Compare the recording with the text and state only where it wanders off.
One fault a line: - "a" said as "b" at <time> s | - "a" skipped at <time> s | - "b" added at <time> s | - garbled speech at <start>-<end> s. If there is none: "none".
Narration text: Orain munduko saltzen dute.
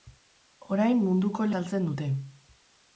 none